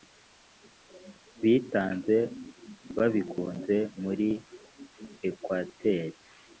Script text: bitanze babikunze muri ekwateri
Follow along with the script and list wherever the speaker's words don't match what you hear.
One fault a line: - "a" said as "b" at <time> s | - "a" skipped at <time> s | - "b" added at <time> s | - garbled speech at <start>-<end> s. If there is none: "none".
none